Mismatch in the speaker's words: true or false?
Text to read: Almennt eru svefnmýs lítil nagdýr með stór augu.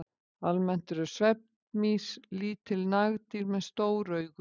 false